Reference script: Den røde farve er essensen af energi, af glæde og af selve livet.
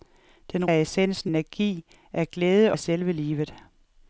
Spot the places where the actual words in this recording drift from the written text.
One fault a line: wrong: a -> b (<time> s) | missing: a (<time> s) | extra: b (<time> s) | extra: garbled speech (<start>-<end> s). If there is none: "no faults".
missing: røde farve (0.7 s)
missing: af (1.3 s)
missing: og (2.7 s)